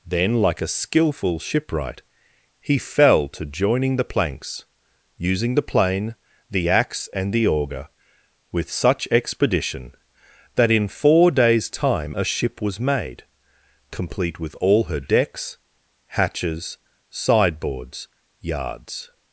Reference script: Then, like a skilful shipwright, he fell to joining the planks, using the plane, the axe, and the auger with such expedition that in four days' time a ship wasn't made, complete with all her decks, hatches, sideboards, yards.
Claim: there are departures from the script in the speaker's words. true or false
true